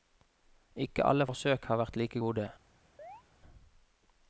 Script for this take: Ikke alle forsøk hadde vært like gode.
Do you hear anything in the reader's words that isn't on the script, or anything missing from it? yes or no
yes